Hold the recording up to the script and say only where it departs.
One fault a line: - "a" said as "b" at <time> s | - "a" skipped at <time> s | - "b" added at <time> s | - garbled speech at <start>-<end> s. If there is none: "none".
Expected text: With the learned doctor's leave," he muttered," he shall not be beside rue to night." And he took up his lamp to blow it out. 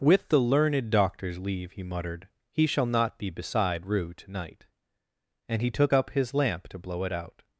none